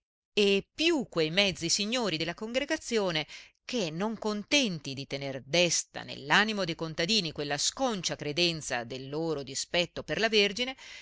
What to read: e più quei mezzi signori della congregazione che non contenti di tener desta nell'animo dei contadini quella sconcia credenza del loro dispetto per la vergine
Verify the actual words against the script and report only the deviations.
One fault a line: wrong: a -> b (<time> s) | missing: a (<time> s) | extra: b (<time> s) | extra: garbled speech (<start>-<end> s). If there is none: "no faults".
no faults